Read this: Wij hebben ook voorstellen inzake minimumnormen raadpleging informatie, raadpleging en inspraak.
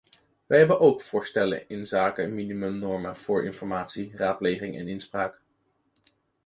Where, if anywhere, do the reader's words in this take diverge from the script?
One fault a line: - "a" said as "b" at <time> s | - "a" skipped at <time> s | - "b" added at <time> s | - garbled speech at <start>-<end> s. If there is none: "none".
- "raadpleging" said as "voor" at 3.2 s